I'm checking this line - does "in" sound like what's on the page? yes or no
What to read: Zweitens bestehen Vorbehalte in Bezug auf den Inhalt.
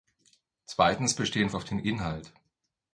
no